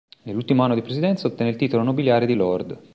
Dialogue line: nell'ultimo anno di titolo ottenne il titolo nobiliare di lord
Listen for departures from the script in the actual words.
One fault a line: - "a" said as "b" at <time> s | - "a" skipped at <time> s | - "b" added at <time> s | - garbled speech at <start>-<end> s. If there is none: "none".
- "titolo" said as "presidenza" at 0.8 s